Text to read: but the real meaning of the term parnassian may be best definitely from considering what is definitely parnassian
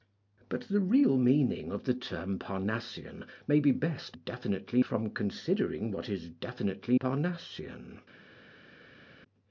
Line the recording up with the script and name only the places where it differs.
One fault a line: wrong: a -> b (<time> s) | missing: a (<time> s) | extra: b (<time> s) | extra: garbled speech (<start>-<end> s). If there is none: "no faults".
no faults